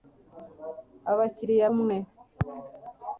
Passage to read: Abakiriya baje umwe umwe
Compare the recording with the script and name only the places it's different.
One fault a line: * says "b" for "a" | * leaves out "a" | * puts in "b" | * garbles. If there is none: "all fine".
* leaves out "baje umwe"